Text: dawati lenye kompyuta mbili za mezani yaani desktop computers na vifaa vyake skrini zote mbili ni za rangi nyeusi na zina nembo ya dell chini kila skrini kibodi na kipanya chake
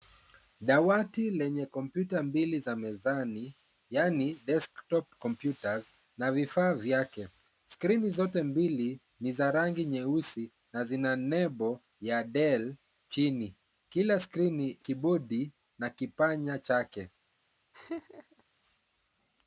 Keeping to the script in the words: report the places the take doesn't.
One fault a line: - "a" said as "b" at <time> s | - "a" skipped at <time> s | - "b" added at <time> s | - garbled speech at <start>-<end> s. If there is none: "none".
none